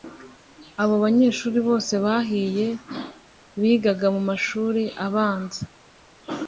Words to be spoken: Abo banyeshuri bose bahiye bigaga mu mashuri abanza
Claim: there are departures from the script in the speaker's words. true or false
false